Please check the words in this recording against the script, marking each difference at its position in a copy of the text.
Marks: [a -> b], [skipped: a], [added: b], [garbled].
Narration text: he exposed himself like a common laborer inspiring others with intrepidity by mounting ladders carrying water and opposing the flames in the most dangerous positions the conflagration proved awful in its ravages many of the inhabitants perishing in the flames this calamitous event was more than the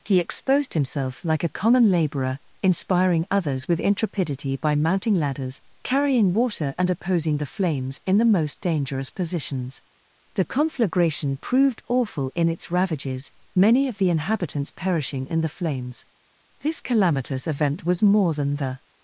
he exposed himself like a common laborer inspiring others with intrepidity by mounting ladders carrying water and opposing the flames in the most dangerous positions the conflagration proved awful in its ravages many of the inhabitants perishing in the flames this calamitous event was more than the